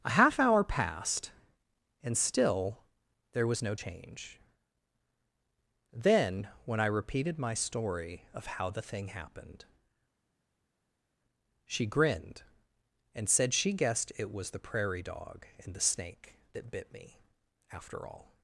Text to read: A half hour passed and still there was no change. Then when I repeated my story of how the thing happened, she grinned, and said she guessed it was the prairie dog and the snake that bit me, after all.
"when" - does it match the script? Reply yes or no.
yes